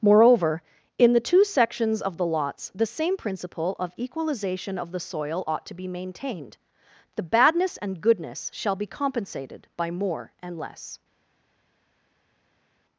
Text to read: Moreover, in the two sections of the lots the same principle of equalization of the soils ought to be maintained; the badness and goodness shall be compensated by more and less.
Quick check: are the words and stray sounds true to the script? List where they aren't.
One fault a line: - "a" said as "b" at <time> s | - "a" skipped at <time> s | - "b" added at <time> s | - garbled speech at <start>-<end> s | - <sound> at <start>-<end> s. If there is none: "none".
- "soils" said as "soil" at 5.0 s